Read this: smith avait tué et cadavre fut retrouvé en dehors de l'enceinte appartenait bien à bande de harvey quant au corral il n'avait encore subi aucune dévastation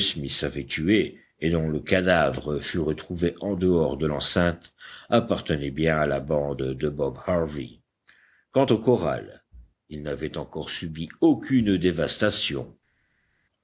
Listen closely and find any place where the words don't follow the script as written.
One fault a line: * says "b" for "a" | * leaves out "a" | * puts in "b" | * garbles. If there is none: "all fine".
* puts in "dont le"
* puts in "la"
* puts in "bob"